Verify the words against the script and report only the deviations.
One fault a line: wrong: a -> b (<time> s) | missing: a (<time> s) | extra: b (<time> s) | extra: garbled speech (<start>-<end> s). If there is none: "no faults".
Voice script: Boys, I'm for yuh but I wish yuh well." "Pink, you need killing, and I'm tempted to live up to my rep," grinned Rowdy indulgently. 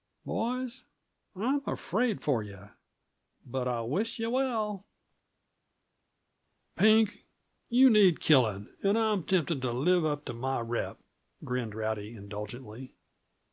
extra: afraid (1.7 s)